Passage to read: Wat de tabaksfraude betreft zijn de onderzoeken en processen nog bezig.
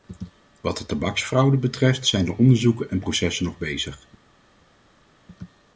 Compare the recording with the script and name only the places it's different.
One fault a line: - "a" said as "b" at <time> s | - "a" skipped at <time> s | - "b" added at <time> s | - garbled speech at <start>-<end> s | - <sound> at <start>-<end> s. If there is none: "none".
none